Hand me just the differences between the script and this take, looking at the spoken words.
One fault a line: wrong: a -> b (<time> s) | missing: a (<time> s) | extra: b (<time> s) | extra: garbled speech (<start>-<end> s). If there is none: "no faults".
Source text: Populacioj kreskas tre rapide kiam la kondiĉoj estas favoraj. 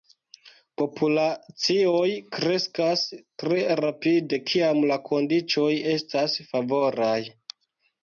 no faults